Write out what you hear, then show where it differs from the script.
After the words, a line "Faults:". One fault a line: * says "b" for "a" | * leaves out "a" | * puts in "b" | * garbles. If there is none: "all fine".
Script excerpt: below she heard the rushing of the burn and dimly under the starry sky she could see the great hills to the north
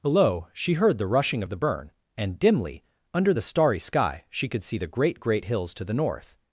below she heard the rushing of the burn and dimly under the starry sky she could see the great great hills to the north
Faults:
* puts in "great"